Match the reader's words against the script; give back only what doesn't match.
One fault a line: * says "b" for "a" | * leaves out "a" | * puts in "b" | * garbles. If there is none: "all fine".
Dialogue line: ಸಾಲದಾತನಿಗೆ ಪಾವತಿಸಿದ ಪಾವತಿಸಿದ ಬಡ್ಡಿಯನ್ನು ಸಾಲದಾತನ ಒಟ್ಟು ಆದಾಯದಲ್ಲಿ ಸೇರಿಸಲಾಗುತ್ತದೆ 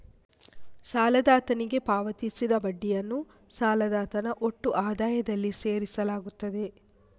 * leaves out "ಪಾವತಿಸಿದ"